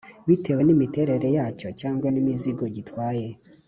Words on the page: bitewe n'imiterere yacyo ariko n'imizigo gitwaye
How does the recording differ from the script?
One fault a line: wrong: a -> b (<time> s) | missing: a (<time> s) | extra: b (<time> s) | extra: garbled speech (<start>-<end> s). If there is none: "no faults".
wrong: ariko -> cyangwa (1.8 s)